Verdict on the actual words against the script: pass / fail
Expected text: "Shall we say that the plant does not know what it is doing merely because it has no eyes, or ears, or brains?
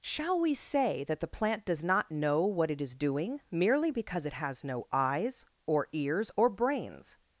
pass